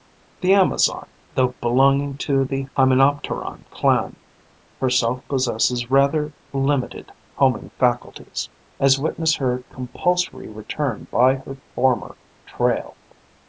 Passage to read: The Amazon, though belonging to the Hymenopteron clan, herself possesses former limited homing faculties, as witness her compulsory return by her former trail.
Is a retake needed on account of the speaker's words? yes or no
yes